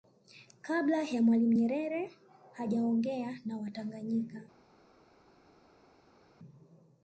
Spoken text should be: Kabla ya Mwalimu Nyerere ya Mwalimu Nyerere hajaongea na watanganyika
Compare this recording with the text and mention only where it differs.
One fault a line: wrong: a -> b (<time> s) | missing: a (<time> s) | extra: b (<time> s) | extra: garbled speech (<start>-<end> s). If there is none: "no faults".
missing: ya Mwalimu Nyerere (2.1 s)